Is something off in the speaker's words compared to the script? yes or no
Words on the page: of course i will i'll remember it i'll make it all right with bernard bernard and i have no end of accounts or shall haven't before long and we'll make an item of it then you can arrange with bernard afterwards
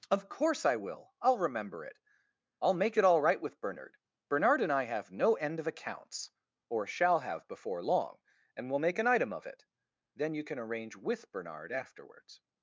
yes